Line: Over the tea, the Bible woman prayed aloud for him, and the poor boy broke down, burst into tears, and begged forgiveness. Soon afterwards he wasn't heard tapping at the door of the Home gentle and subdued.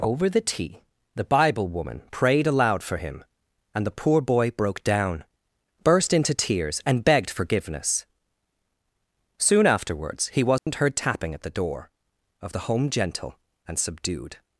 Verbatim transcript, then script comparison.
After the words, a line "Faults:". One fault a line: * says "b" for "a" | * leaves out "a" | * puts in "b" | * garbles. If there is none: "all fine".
Over the tea, the Bible woman prayed aloud for him, and the poor boy broke down, burst into tears, and begged forgiveness. Soon afterwards he wasn't heard tapping at the door of the Home gentle and subdued.
Faults:
all fine